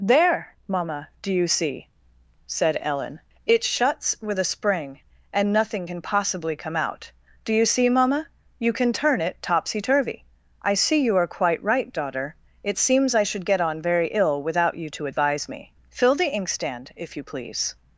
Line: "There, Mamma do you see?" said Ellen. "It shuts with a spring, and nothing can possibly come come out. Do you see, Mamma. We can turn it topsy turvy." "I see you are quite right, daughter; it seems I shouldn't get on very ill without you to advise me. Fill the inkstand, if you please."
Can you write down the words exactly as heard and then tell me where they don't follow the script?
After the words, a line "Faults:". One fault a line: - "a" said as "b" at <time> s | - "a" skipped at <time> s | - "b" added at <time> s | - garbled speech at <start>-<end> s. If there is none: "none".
"There, Mamma do you see?" said Ellen. "It shuts with a spring, and nothing can possibly come out. Do you see, Mamma. You can turn it topsy turvy." "I see you are quite right, daughter; it seems I should get on very ill without you to advise me. Fill the inkstand, if you please."
Faults:
- "come" skipped at 6.8 s
- "We" said as "You" at 8.6 s
- "shouldn't" said as "should" at 13.2 s